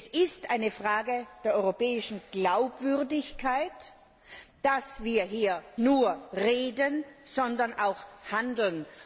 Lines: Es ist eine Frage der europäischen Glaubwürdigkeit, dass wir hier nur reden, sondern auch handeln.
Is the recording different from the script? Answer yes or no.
no